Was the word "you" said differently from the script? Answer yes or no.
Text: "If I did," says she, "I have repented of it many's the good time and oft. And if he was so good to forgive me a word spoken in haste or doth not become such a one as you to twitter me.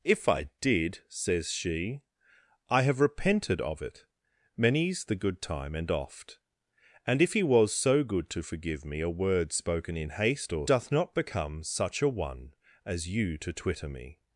no